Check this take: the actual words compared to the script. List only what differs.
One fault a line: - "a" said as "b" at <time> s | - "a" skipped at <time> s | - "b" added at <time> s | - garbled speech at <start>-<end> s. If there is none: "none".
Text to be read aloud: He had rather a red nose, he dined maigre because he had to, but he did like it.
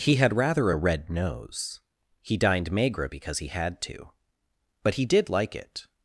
none